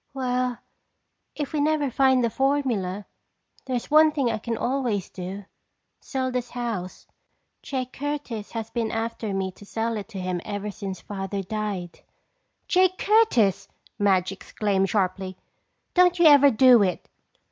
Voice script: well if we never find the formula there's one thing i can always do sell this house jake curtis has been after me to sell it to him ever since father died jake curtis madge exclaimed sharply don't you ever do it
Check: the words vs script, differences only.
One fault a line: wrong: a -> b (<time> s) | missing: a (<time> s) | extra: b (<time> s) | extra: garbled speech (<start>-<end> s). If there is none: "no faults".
no faults